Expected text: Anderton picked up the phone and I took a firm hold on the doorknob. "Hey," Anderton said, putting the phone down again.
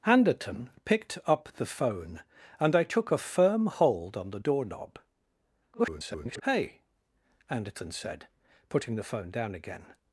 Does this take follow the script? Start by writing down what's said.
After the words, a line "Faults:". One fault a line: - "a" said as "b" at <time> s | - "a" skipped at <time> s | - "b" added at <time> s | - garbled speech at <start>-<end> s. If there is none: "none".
Anderton picked up the phone and I took a firm hold on the doorknob. [garbled] "Hey," Anderton said, putting the phone down again.
Faults:
- garbled speech at 5.7-6.4 s